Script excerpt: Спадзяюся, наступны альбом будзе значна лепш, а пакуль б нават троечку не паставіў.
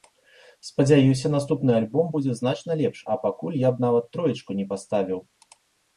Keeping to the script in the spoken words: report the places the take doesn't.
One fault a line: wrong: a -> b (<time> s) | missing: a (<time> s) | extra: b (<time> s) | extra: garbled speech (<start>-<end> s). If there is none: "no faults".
extra: я (3.6 s)